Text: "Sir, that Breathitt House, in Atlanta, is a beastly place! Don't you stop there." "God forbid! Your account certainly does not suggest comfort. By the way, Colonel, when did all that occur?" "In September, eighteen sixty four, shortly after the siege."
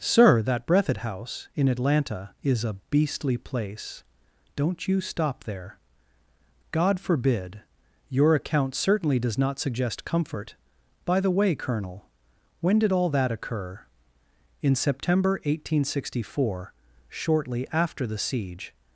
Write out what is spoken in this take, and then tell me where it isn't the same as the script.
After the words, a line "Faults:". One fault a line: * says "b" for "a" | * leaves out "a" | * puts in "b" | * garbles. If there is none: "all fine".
"Sir, that Breathitt House, in Atlanta, is a beastly place! Don't you stop there." "God forbid! Your account certainly does not suggest comfort. By the way, Colonel, when did all that occur?" "In September, eighteen sixty four, shortly after the siege."
Faults:
all fine